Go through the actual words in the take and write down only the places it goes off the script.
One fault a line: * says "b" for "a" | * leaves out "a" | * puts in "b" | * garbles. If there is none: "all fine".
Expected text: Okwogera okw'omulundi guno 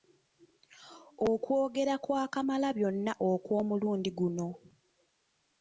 * puts in "kwa Kamalabyonna"